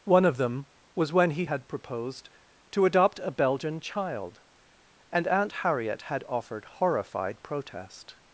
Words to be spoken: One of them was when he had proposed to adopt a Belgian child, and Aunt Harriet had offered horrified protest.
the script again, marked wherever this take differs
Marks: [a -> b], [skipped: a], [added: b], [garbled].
One of them was when he had proposed to adopt a Belgian child, and Aunt Harriet had offered horrified protest.